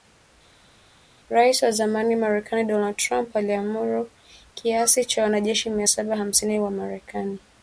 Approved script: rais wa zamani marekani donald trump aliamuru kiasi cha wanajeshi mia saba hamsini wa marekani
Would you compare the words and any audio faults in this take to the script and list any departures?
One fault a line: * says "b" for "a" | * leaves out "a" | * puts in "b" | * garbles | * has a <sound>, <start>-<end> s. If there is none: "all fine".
all fine